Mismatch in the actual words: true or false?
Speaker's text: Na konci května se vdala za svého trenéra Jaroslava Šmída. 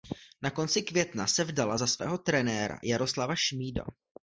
false